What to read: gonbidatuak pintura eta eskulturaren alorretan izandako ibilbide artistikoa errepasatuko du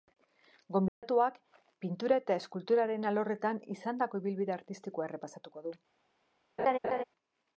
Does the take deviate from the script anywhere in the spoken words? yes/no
no